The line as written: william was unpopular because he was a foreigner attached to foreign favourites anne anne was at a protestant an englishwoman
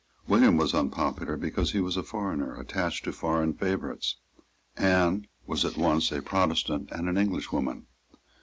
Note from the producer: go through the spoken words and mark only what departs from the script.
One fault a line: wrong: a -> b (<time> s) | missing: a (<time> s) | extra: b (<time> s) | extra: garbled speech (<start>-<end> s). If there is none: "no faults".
missing: anne (5.3 s)
extra: once (5.8 s)
extra: and (6.9 s)